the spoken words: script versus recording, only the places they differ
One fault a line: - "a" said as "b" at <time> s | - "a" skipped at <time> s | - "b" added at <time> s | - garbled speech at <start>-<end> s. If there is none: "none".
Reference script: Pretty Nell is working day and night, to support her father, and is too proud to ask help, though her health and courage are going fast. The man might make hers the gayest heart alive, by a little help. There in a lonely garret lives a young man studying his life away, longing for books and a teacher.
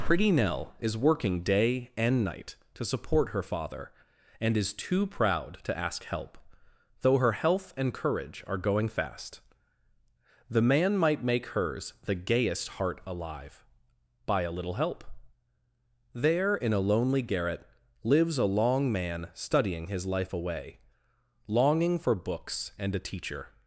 - "young" said as "long" at 18.5 s